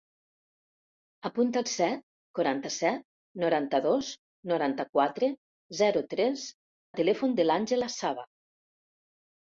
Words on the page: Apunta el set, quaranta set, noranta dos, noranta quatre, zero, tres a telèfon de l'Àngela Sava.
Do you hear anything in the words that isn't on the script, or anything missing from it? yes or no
no